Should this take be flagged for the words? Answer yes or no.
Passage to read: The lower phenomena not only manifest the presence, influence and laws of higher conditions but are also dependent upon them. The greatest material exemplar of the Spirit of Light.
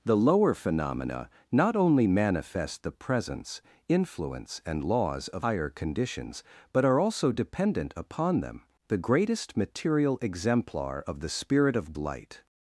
no